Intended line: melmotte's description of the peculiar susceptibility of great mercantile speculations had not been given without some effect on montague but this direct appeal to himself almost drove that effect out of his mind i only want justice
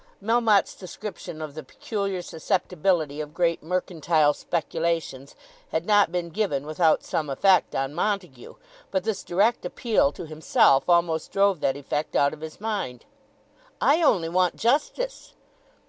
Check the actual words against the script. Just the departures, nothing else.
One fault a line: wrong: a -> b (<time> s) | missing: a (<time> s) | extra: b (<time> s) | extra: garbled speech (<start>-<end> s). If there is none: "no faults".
no faults